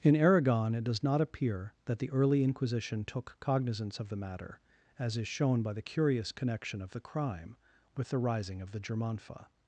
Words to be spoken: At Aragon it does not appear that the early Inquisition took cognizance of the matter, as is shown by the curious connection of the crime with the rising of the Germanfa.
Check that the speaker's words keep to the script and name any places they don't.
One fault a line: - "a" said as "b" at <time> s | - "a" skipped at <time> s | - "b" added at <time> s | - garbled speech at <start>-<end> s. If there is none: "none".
- "At" said as "In" at 0.0 s